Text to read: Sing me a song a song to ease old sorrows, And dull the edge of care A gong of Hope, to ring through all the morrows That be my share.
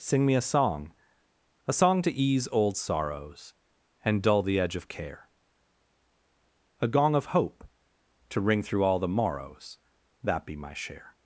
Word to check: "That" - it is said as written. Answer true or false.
true